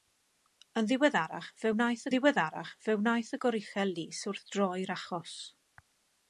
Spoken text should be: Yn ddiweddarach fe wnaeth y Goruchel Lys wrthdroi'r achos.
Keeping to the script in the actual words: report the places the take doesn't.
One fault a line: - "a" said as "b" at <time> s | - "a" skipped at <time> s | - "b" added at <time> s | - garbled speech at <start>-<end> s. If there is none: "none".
- "ddiweddarach fe wnaeth" added at 2.1 s